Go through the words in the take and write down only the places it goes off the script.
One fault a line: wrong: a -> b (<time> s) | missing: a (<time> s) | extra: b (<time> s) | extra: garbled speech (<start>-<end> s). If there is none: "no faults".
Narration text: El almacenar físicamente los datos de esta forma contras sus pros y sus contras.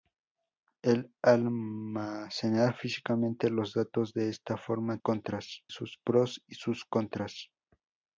no faults